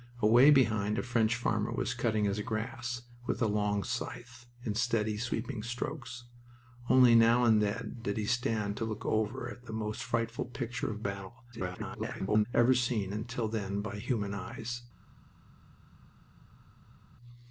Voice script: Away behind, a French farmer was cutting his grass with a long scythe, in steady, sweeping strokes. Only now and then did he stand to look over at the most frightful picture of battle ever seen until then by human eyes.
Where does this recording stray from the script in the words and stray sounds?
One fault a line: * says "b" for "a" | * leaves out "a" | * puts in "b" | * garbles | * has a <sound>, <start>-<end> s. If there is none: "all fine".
* garbles